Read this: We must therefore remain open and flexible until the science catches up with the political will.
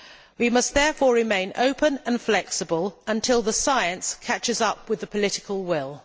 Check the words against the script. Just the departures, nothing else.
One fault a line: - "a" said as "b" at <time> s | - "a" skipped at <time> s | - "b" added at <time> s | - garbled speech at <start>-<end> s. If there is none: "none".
none